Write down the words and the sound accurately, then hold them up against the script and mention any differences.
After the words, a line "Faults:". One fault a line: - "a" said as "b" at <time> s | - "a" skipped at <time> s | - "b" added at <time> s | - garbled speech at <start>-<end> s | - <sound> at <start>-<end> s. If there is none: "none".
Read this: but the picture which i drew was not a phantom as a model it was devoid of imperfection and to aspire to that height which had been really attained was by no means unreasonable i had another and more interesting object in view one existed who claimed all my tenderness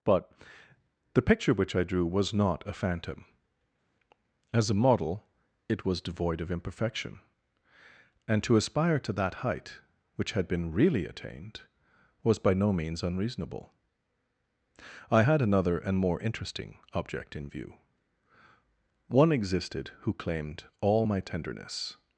but the picture which i drew was not a phantom as a model it was devoid of imperfection and to aspire to that height which had been really attained was by no means unreasonable i had another and more interesting object in view one existed who claimed all my tenderness
Faults:
none